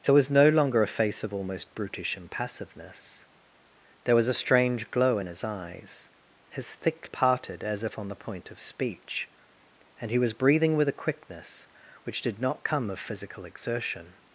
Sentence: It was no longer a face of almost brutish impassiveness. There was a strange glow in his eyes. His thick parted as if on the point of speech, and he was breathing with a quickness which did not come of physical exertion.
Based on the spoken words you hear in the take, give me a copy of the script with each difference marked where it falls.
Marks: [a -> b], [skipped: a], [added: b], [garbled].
It was no longer a face of almost brutish impassiveness. There was a strange glow in his eyes. His thick parted as if on the point of speech, and he was breathing with a quickness which did not come of physical exertion.